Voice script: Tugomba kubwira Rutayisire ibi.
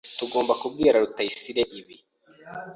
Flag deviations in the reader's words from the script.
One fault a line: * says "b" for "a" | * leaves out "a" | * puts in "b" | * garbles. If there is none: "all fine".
all fine